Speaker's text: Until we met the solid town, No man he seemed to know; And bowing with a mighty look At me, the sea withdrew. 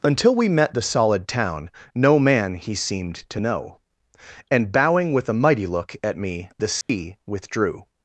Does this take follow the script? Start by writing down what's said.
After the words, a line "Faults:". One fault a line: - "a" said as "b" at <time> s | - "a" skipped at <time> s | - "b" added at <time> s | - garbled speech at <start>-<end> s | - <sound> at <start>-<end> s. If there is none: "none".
Until we met the solid town, No man he seemed to know; And bowing with a mighty look At me, the sea withdrew.
Faults:
- dropout at 6.8-6.9 s